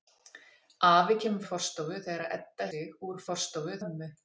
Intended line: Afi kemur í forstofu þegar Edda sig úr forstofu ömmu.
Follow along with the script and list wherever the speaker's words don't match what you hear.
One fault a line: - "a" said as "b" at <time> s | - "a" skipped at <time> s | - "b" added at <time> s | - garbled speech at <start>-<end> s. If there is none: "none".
none